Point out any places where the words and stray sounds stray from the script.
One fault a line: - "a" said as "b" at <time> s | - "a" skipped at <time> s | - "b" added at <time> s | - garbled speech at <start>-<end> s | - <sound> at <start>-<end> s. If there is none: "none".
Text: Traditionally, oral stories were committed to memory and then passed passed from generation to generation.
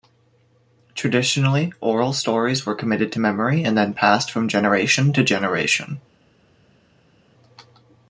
- "passed" skipped at 4.3 s